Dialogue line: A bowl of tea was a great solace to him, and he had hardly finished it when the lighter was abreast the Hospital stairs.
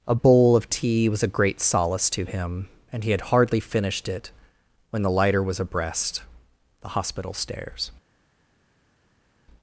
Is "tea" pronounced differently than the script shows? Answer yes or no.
no